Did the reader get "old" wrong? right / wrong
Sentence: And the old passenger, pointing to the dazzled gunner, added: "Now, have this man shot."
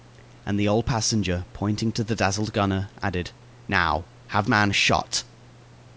right